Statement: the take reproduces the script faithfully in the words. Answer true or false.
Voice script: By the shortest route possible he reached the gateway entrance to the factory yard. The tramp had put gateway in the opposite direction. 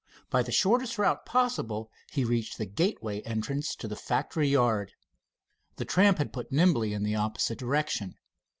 false